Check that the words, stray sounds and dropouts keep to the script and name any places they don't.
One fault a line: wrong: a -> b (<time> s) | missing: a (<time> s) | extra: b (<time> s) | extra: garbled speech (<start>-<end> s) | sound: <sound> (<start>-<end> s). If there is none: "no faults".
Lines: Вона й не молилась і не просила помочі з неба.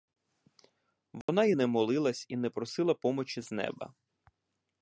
sound: dropout (1.2-1.3 s)